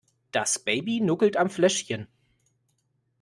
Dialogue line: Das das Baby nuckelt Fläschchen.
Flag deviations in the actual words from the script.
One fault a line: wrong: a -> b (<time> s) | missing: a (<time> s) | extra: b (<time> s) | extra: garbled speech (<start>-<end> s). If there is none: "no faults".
missing: das (0.6 s)
extra: am (1.4 s)